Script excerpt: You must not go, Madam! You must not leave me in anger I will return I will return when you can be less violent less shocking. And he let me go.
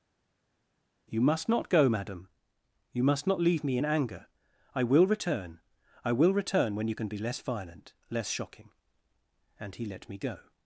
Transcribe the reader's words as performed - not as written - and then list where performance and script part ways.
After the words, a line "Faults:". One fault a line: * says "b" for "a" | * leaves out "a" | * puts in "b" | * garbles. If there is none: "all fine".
You must not go, Madam! You must not leave me in anger I will return I will return when you can be less violent less shocking. And he let me go.
Faults:
all fine